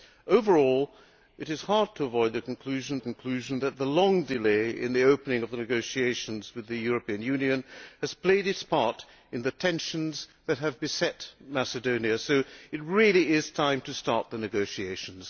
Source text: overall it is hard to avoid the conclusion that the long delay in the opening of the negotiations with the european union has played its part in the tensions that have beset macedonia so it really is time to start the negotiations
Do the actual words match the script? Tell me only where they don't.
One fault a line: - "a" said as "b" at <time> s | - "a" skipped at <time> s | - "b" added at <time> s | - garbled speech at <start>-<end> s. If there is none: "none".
- "conclusion" added at 3.0 s